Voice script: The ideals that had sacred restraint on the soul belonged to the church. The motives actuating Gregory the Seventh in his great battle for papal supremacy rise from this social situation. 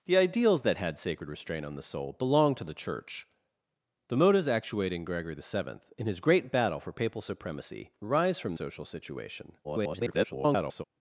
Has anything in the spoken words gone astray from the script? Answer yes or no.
yes